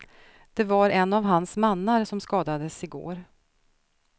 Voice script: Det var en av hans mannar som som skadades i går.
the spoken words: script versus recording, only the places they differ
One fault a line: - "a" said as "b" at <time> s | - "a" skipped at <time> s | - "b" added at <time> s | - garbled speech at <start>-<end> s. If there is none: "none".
- "som" skipped at 2.2 s